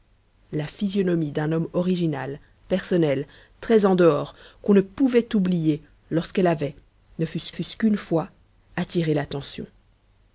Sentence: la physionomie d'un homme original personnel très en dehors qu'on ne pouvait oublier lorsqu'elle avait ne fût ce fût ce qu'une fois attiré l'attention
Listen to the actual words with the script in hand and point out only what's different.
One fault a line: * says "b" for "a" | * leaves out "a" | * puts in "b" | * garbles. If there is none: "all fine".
all fine